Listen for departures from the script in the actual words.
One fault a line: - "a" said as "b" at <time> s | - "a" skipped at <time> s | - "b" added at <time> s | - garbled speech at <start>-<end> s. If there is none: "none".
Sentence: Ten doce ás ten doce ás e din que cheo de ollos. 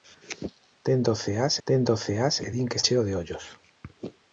none